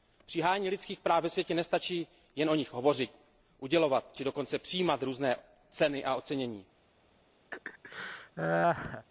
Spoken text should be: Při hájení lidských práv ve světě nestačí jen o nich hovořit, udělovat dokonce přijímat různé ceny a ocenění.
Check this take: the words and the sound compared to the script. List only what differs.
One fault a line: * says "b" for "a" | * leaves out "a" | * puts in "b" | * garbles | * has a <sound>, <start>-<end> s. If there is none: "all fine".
* puts in "či"
* has a laugh, 7.5-9.1 s